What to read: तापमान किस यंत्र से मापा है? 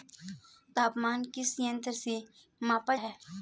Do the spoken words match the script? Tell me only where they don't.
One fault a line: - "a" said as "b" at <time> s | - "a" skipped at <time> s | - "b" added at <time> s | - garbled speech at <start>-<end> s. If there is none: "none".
none